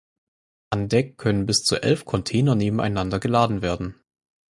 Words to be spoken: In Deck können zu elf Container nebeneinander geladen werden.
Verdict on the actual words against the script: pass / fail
fail